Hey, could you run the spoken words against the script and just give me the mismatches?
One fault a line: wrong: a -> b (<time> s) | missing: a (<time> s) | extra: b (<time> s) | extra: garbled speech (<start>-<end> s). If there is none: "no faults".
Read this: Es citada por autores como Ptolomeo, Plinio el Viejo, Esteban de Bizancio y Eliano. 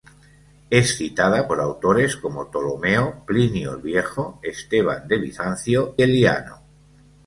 missing: y (6.0 s)